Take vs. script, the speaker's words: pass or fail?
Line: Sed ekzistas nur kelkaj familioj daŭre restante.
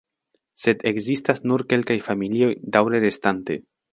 pass